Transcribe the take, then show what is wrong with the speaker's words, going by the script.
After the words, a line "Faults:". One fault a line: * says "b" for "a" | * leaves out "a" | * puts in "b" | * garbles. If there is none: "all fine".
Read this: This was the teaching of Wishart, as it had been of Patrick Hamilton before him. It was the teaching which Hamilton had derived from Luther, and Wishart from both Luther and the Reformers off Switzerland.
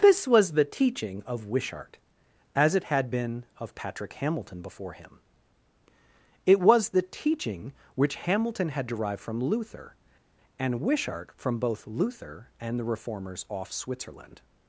This was the teaching of Wishart, as it had been of Patrick Hamilton before him. It was the teaching which Hamilton had derived from Luther, and Wishart from both Luther and the Reformers off Switzerland.
Faults:
all fine